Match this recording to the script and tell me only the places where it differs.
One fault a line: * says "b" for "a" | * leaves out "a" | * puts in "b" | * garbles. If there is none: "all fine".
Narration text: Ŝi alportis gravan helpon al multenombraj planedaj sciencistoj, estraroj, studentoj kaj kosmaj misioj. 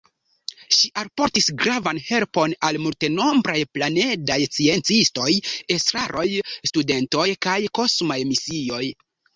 all fine